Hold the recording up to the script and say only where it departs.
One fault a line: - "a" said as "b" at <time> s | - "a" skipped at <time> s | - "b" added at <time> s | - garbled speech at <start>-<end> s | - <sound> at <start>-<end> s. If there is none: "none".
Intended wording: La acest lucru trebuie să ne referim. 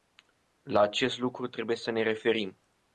none